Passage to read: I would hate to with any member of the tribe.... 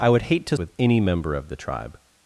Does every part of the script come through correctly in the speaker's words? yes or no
yes